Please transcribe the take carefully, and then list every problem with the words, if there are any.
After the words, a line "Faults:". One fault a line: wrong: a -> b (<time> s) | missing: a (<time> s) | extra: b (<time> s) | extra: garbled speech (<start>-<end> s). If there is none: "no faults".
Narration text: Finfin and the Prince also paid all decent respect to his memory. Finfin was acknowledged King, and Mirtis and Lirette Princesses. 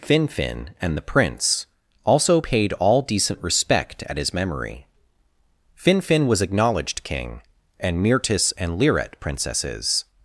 Finfin and the Prince also paid all decent respect at his memory. Finfin was acknowledged King, and Mirtis and Lirette Princesses.
Faults:
wrong: to -> at (4.0 s)